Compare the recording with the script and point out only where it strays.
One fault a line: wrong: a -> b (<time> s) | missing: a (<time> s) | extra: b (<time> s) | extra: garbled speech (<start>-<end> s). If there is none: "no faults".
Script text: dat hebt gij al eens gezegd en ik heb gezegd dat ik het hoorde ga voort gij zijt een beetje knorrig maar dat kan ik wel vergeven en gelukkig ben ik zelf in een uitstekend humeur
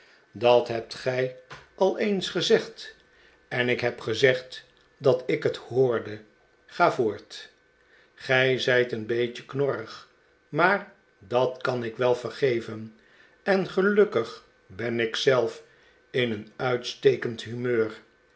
no faults